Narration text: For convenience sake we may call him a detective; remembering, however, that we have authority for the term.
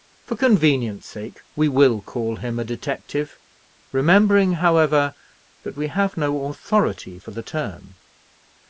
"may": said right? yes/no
no